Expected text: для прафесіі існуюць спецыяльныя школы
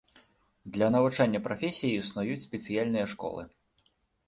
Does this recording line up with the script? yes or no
no